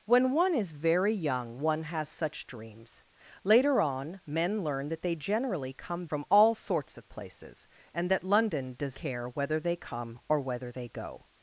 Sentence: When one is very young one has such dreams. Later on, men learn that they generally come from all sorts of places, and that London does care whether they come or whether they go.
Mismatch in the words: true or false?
false